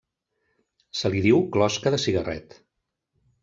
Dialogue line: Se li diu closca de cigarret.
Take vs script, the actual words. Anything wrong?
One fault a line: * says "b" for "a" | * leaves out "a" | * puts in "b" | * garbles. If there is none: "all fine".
all fine